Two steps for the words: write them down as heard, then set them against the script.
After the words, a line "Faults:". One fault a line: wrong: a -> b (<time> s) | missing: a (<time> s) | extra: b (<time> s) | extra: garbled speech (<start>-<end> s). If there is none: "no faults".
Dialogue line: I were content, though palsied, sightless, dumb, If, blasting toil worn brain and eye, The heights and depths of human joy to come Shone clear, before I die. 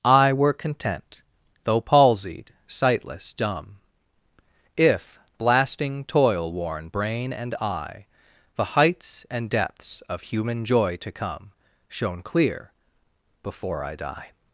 I were content, though palsied, sightless, dumb, If, blasting toil worn brain and eye, The heights and depths of human joy to come Shone clear, before I die.
Faults:
no faults